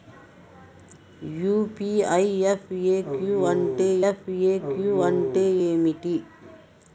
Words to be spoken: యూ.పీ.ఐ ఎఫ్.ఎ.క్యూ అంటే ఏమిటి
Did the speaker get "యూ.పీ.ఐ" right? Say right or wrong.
right